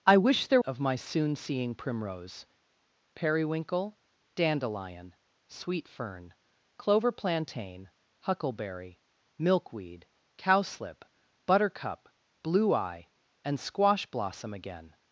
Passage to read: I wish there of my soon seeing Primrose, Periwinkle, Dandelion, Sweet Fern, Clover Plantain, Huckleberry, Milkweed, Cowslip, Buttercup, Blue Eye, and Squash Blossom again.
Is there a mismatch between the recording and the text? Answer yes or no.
no